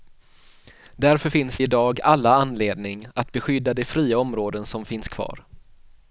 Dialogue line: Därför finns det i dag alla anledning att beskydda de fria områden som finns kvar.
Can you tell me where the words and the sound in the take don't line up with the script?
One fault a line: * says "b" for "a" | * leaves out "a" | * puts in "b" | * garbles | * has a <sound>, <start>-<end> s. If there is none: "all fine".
* leaves out "det"